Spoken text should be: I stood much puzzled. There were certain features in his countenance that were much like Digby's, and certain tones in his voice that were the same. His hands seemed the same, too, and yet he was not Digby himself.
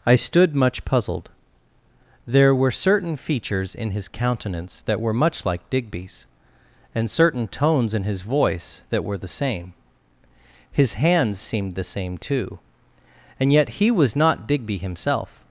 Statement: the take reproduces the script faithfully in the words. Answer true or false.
true